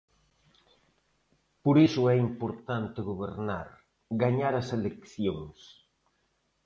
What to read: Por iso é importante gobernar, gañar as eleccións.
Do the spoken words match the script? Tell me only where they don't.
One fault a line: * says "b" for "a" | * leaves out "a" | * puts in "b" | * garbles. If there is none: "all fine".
all fine